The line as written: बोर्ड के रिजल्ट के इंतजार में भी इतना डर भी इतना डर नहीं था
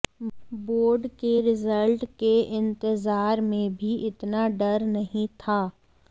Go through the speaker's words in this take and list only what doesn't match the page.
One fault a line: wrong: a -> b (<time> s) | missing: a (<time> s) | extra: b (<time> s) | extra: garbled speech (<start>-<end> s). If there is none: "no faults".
missing: भी इतना डर (4.8 s)